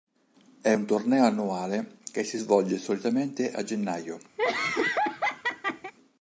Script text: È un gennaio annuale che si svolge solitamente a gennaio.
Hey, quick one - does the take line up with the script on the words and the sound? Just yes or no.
no